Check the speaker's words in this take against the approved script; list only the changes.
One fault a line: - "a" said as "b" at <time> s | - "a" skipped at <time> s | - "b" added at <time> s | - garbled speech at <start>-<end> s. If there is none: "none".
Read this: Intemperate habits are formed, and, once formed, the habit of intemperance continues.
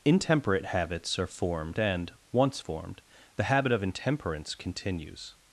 none